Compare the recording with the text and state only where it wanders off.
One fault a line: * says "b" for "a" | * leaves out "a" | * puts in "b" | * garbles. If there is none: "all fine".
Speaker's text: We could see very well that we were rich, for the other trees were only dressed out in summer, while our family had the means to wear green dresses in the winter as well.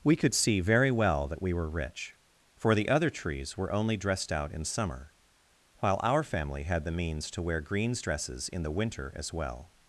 * says "greens" for "green"